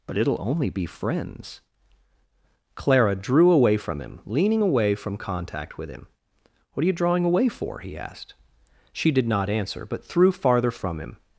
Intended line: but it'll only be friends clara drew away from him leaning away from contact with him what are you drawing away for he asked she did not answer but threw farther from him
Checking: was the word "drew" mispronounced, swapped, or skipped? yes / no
no